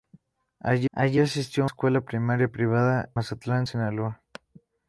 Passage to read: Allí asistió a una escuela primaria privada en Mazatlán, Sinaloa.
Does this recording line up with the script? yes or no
no